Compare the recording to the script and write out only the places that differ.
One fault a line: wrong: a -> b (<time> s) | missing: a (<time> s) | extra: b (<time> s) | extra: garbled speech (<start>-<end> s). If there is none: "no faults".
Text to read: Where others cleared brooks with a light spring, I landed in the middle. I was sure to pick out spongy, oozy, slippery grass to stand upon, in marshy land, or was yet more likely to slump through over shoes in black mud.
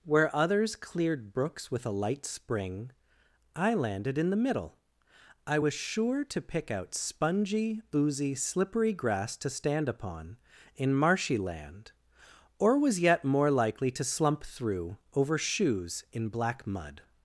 no faults